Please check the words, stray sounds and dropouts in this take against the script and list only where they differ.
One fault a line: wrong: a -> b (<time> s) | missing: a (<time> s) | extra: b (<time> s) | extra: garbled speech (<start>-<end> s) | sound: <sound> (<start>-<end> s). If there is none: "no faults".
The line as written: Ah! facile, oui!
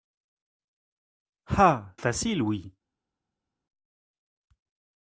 no faults